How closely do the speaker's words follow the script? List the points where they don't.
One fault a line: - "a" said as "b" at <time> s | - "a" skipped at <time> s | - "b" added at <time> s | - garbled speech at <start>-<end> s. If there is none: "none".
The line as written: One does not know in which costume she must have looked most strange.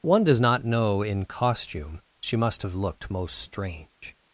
- "which" skipped at 1.3 s